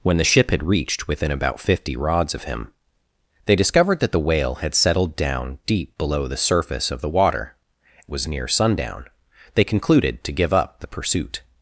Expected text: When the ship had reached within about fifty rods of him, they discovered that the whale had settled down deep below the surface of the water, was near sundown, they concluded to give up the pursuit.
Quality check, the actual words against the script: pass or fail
pass